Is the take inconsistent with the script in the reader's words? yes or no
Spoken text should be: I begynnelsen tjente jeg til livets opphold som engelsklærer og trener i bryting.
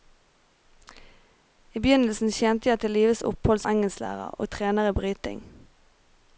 yes